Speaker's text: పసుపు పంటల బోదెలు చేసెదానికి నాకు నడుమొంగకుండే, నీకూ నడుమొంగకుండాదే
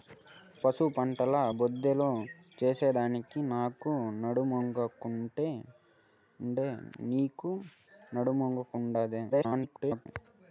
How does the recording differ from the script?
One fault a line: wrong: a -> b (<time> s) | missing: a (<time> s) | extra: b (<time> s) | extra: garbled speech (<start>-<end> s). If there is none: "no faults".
extra: garbled speech (9.3-10.1 s)